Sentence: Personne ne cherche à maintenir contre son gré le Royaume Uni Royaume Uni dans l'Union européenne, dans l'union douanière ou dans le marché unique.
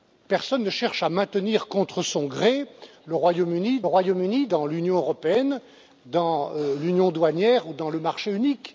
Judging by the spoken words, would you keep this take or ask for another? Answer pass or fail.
pass